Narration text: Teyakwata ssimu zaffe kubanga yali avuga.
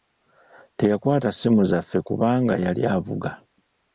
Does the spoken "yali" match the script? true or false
true